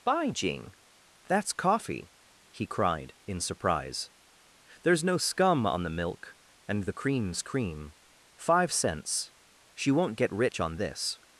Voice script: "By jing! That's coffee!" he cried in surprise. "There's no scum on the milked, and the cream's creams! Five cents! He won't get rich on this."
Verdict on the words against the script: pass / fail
fail